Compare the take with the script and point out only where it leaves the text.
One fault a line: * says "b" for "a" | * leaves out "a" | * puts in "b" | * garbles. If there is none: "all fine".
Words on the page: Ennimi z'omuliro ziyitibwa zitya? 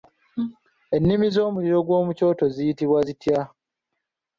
* puts in "gw'omu kyoto"